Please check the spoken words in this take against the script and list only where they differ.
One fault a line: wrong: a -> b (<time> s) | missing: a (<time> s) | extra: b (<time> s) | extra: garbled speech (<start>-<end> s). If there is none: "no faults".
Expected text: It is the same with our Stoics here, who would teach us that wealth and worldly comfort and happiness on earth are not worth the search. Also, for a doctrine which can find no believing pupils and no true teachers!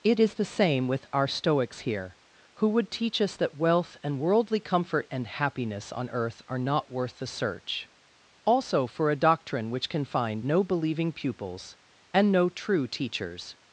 no faults